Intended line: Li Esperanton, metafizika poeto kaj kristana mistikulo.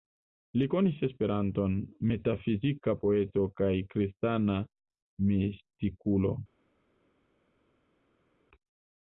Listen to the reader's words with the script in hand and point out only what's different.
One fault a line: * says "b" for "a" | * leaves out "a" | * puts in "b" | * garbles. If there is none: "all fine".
* puts in "konis"